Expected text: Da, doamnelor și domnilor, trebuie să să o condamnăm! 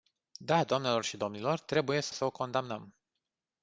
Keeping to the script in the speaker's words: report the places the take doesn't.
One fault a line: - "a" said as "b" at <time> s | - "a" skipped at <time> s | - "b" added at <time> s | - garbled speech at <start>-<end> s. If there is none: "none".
none